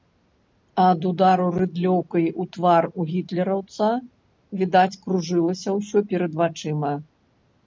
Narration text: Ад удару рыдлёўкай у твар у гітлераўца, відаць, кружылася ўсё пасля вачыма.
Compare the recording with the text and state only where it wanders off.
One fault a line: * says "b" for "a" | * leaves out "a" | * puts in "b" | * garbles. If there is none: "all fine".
* says "перад" for "пасля"